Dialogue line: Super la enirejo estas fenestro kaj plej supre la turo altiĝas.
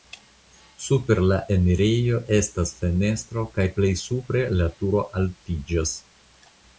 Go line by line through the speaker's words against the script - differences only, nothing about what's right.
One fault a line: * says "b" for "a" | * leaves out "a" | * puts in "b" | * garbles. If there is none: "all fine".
all fine